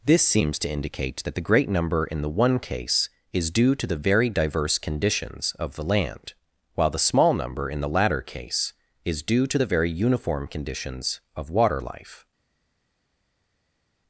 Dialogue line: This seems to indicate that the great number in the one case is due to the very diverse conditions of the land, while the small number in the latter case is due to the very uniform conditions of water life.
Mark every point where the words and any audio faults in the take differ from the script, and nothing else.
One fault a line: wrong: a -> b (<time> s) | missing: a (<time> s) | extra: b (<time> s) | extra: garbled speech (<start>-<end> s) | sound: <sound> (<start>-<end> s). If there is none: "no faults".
no faults